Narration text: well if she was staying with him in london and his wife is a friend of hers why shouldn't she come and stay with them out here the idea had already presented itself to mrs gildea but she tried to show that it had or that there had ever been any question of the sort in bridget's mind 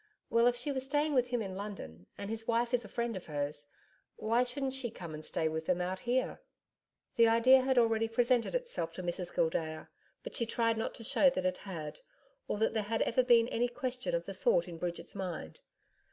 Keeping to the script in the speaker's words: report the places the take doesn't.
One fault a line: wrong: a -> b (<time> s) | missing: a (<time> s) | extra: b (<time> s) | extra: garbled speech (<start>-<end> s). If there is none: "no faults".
extra: not (10.8 s)